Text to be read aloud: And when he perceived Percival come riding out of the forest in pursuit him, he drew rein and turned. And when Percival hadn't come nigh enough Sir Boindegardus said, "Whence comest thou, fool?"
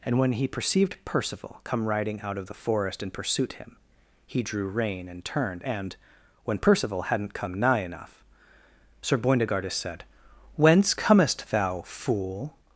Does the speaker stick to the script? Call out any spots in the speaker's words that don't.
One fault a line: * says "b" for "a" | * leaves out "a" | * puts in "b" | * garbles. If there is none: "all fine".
all fine